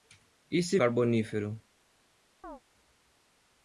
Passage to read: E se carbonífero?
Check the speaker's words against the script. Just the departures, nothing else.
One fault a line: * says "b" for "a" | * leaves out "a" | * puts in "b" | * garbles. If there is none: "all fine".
all fine